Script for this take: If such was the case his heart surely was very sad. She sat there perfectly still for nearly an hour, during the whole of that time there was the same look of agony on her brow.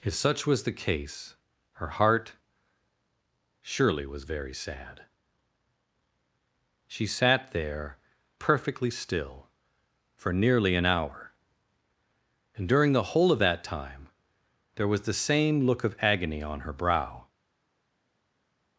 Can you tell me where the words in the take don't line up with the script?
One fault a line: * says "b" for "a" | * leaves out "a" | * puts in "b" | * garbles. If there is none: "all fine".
* says "her" for "his"
* puts in "and"